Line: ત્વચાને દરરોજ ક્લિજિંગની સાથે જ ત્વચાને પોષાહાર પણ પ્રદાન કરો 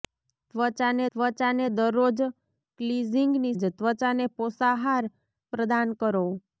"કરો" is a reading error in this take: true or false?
false